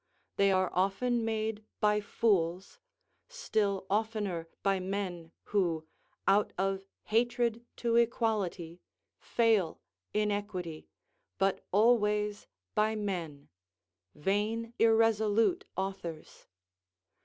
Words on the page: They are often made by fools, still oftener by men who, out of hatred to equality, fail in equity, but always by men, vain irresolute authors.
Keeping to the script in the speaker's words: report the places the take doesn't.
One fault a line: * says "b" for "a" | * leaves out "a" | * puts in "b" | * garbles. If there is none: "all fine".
all fine